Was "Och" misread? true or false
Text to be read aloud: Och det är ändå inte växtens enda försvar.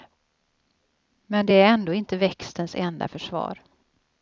true